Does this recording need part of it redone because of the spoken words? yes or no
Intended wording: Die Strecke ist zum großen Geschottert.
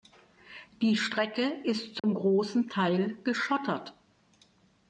yes